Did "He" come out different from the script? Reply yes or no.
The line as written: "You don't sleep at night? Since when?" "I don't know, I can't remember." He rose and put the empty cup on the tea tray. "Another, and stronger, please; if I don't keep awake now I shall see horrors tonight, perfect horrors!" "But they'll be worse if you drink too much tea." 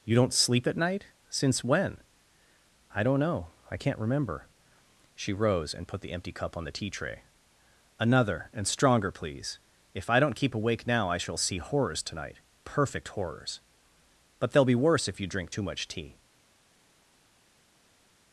yes